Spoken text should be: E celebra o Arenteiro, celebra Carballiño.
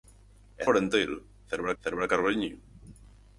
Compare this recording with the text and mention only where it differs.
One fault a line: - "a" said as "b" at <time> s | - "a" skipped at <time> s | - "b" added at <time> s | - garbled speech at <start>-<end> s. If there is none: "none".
- "celebra" skipped at 0.7 s
- "celebra" added at 1.8 s